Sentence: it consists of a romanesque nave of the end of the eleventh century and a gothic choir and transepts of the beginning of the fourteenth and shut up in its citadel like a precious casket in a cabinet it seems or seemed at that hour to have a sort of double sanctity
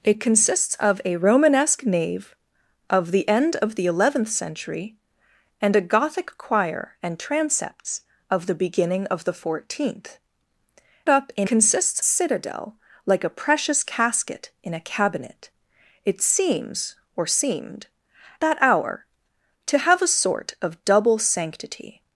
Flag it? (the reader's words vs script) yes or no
yes